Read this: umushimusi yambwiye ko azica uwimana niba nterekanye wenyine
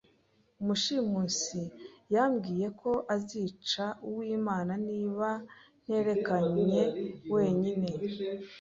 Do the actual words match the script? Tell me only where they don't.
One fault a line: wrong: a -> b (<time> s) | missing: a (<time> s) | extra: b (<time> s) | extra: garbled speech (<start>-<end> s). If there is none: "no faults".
no faults